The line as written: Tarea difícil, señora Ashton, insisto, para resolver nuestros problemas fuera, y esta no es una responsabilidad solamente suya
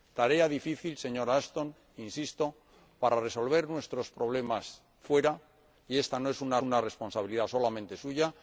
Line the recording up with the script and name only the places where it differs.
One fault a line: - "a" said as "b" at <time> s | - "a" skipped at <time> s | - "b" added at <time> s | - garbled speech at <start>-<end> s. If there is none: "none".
- "una" added at 6.6 s